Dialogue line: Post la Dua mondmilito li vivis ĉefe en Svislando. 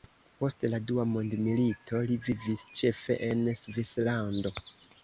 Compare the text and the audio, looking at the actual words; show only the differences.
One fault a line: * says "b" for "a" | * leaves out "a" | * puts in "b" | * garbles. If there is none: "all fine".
all fine